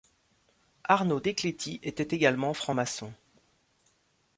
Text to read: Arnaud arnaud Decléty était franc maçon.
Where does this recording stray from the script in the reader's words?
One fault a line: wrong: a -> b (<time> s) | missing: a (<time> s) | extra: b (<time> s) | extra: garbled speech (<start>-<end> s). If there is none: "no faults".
missing: arnaud (1.2 s)
extra: également (2.1 s)